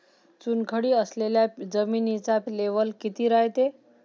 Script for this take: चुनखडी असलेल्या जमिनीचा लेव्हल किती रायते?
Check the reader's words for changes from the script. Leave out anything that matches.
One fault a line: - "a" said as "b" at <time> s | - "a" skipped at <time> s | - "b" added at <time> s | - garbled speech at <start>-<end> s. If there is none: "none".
none